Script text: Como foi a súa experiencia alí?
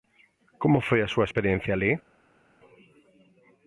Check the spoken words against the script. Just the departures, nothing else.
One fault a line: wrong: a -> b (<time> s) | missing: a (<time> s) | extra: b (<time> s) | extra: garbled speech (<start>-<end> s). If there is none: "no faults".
no faults